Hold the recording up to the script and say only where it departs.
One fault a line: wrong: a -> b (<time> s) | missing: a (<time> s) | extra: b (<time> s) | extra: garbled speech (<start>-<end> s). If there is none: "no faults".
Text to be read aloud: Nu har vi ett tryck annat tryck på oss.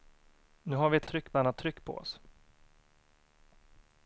no faults